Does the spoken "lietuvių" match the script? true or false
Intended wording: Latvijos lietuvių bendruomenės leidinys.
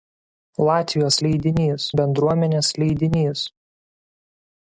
false